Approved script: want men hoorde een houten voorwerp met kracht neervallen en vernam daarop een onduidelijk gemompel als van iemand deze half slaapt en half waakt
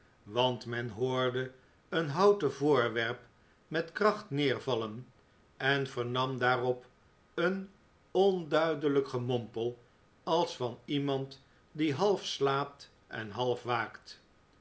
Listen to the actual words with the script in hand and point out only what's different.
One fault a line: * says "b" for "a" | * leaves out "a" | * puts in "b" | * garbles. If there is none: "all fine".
* says "die" for "deze"